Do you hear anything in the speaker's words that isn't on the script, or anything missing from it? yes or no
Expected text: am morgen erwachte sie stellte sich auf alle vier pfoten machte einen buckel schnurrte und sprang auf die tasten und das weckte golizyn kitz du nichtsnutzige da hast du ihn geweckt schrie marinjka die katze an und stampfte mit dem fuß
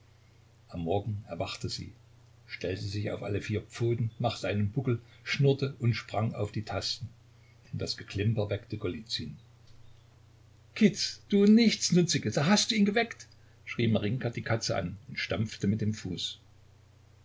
yes